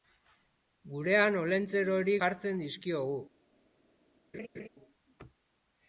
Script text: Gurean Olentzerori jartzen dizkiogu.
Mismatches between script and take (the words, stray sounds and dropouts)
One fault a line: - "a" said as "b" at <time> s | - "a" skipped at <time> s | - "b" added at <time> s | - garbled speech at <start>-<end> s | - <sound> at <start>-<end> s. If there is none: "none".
- laugh at 4.3-4.7 s